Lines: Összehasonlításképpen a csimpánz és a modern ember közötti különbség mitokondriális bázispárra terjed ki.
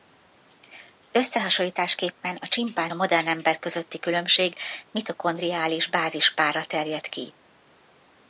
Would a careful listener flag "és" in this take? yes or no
yes